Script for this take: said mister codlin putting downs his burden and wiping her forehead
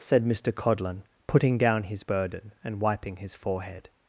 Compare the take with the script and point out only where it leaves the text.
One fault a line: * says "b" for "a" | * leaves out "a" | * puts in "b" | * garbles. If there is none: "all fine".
* says "down" for "downs"
* says "his" for "her"